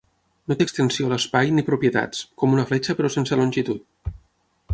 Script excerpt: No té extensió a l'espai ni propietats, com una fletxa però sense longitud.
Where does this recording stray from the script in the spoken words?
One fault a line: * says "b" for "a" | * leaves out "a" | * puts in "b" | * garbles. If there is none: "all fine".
all fine